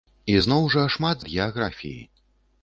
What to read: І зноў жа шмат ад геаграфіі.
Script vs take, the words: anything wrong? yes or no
no